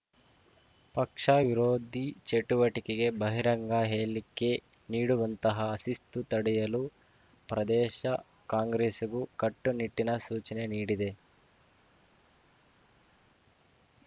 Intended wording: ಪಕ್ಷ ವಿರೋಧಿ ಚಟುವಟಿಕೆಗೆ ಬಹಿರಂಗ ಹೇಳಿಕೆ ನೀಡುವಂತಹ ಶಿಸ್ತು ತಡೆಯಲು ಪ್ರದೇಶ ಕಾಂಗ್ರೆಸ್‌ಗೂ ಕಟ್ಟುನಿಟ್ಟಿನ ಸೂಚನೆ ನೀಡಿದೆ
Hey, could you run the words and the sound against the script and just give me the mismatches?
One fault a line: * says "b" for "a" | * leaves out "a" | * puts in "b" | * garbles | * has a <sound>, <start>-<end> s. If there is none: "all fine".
all fine